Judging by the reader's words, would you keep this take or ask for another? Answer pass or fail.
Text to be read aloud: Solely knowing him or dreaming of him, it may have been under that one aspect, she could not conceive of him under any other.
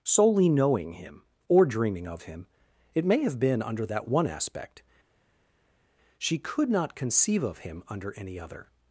pass